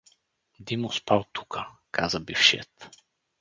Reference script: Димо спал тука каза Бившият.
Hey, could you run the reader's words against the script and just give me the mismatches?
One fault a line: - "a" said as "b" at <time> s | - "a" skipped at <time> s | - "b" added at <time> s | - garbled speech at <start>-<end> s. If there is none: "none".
none